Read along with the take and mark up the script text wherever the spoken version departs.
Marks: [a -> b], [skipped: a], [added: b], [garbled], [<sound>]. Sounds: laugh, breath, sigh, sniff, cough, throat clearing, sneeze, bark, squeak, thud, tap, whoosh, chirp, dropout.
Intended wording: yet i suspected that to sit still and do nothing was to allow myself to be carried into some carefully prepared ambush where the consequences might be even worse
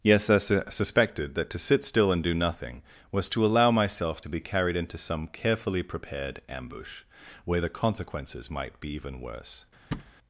[yet -> yes] i [added: su] suspected that to sit still and do nothing was to allow myself to be carried into some carefully prepared ambush where the consequences might be even worse [thud]